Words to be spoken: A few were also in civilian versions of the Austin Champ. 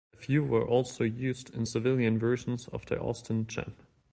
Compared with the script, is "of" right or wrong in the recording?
right